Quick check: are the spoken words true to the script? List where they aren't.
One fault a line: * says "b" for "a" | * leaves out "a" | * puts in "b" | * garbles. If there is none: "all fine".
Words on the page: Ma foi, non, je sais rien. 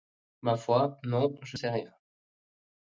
all fine